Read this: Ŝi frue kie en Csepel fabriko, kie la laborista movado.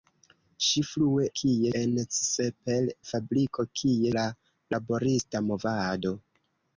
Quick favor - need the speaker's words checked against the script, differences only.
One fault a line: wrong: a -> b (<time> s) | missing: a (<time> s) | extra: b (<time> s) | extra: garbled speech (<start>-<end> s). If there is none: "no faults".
no faults